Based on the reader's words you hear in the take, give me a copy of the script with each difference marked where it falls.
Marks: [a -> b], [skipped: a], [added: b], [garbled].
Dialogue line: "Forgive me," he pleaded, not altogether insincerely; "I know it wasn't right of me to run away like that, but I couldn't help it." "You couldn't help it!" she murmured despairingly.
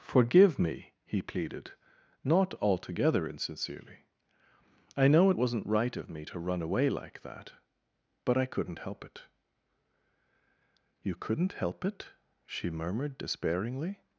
"Forgive me," he pleaded, not altogether insincerely; "I know it wasn't right of me to run away like that, but I couldn't help it." "You couldn't help it!" she murmured despairingly.